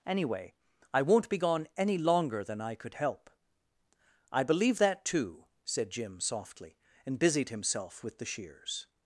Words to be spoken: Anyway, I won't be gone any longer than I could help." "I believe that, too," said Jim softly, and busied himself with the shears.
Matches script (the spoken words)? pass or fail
pass